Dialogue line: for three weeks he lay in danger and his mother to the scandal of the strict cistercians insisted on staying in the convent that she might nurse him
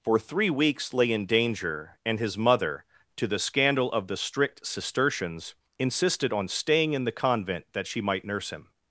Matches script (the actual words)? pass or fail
fail